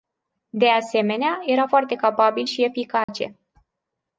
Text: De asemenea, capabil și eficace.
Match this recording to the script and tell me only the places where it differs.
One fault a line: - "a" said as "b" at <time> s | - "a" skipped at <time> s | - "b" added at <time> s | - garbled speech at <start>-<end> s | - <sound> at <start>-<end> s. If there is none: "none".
- "era foarte" added at 1.4 s
- dropout at 3.0-3.1 s